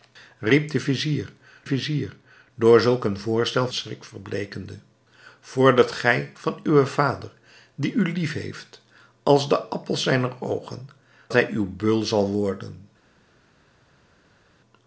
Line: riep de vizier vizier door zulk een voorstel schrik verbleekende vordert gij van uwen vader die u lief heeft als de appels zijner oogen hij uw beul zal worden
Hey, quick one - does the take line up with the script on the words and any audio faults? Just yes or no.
yes